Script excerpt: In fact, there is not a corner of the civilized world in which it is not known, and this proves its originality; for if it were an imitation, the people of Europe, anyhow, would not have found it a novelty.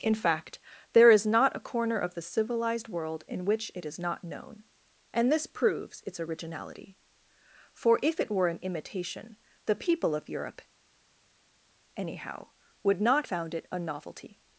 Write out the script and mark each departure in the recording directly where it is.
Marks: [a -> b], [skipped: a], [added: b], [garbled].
In fact, there is not a corner of the civilized world in which it is not known, and this proves its originality; for if it were an imitation, the people of Europe, anyhow, would not [skipped: have] found it a novelty.